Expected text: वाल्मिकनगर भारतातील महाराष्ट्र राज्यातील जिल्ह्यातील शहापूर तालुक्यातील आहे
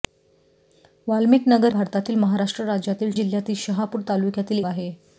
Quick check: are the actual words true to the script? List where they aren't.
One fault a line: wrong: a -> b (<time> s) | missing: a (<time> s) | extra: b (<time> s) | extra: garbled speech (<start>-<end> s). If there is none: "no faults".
no faults